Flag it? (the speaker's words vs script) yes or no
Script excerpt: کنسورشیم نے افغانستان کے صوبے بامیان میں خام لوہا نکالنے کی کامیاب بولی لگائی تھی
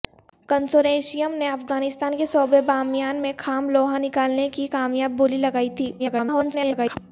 yes